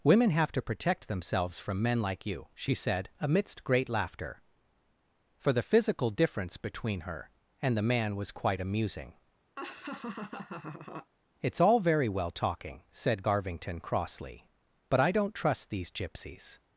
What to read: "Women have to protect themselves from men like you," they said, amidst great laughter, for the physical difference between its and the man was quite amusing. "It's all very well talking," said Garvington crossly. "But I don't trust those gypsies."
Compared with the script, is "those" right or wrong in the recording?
wrong